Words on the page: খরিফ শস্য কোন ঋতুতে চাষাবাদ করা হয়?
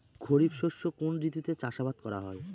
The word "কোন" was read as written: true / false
true